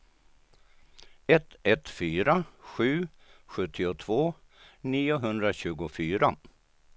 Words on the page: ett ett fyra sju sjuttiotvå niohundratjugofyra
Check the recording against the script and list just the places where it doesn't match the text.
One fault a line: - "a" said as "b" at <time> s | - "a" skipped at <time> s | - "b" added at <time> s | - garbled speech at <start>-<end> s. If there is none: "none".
none